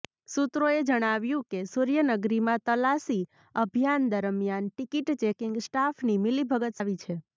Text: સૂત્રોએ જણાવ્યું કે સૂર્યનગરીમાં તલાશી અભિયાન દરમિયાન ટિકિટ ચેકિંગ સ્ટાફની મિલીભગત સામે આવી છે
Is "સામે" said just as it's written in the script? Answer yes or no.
no